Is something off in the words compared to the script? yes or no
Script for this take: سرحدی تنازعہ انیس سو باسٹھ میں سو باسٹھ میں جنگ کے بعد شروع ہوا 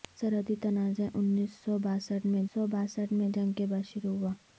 no